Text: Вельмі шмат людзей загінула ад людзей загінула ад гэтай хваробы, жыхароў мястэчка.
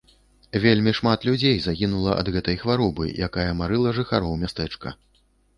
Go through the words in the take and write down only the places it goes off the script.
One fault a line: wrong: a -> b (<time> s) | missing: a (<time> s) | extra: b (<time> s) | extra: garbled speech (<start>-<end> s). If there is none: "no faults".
wrong: людзей загінула ад гэтай хваробы -> гэтай хваробы якая марыла (2.4 s)